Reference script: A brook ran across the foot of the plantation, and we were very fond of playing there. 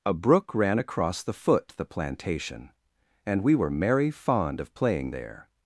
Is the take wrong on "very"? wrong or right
wrong